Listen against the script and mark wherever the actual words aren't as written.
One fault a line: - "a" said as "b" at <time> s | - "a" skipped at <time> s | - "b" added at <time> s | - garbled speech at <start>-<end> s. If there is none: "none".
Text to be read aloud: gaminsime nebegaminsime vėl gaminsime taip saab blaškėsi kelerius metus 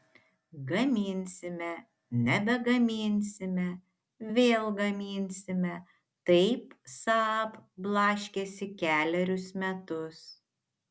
none